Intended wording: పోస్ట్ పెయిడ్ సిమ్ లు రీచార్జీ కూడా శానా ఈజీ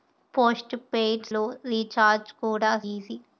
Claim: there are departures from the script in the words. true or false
true